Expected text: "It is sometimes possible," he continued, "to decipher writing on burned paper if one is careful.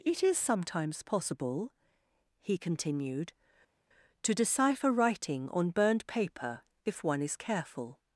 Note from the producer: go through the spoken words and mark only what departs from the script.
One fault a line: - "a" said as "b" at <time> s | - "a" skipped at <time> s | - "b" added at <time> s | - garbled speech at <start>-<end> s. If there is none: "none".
none